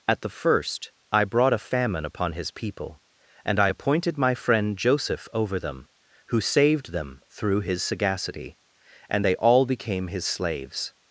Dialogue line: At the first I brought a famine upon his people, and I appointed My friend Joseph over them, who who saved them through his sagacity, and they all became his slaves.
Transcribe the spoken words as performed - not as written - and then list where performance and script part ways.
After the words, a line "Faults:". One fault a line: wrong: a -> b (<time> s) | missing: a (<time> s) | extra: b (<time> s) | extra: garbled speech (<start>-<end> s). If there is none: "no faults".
At the first I brought a famine upon his people, and I appointed My friend Joseph over them, who saved them through his sagacity, and they all became his slaves.
Faults:
missing: who (6.4 s)